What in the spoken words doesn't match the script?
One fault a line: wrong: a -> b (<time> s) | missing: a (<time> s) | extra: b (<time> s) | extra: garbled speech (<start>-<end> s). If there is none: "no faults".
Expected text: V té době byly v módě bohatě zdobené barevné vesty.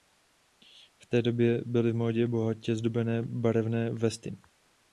no faults